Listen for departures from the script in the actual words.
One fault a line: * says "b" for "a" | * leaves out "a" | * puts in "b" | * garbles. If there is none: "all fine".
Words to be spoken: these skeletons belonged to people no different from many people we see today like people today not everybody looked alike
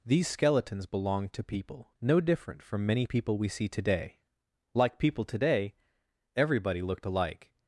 * leaves out "not"